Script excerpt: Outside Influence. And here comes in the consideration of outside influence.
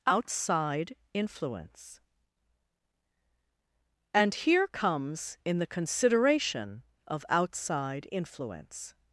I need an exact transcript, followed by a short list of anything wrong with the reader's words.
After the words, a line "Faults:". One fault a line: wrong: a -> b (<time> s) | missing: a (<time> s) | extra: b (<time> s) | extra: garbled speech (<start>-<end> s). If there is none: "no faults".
Outside Influence. And here comes in the consideration of outside influence.
Faults:
no faults